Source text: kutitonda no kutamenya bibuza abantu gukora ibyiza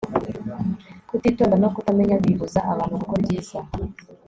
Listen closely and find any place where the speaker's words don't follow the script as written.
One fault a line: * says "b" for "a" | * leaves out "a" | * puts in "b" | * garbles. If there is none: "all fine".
all fine